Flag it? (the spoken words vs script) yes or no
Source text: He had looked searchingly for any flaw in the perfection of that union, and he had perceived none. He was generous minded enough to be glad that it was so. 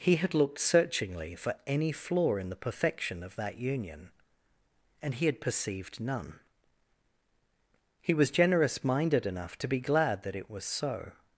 no